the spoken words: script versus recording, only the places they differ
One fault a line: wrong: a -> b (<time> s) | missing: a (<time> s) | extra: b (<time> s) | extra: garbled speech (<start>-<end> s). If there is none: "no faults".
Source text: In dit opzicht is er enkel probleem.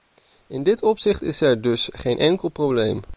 extra: dus geen (1.6 s)